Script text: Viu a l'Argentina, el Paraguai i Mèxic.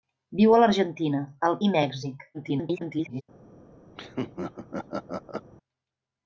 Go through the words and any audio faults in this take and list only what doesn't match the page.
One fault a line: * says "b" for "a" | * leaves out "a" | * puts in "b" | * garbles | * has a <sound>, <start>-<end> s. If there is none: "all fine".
* leaves out "Paraguai"
* garbles
* has a laugh, 4.0-5.5 s